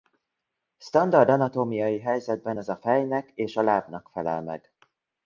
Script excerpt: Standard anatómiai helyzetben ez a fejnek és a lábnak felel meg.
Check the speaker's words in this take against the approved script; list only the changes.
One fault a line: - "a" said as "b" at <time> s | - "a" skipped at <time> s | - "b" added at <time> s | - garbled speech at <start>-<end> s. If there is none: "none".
none